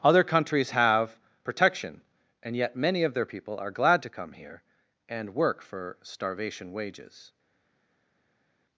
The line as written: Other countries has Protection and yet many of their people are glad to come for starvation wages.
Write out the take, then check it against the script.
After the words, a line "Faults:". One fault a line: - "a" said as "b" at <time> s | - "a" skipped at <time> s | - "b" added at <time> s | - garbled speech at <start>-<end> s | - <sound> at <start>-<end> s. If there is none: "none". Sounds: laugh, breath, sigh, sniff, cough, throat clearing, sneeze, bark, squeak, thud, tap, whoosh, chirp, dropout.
Other countries have Protection and yet many of their people are glad to come here and work for starvation wages.
Faults:
- "has" said as "have" at 0.7 s
- "here and work" added at 4.3 s